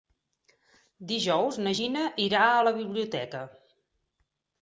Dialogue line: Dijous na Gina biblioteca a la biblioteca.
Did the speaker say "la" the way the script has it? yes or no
yes